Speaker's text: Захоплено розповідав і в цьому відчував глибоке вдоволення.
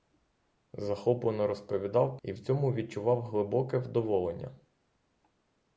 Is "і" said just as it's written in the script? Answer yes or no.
yes